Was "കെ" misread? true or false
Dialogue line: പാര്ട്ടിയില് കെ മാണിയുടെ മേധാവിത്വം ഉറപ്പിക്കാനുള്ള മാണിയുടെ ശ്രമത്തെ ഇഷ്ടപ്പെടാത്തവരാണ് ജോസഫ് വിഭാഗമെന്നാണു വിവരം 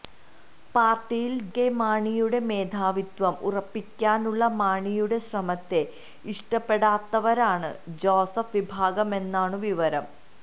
false